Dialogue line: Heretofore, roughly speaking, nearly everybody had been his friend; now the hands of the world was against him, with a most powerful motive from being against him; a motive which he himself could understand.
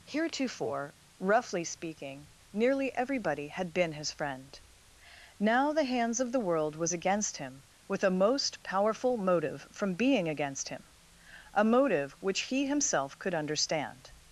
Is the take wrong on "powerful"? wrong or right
right